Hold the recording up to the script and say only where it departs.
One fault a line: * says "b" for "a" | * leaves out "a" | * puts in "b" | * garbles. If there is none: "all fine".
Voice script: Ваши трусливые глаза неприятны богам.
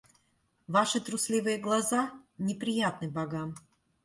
all fine